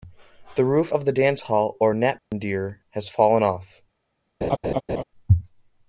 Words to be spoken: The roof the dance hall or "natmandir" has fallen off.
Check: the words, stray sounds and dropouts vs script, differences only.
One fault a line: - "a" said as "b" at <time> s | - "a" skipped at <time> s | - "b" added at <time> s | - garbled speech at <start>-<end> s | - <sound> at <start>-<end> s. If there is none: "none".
- "of" added at 0.9 s
- dropout at 2.2-2.3 s
- laugh at 4.4-5.0 s